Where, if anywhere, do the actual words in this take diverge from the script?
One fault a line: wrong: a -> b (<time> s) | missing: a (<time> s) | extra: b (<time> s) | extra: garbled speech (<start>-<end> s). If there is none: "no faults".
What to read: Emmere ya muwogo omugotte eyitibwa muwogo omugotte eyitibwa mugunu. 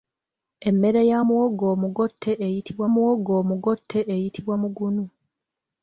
no faults